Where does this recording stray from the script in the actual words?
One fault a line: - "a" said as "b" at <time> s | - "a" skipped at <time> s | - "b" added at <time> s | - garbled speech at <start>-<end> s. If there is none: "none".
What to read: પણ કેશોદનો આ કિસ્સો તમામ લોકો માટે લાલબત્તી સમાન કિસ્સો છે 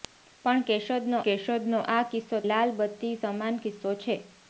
- "કેશોદનો" added at 1.2 s
- "તમામ લોકો માટે" skipped at 2.4 s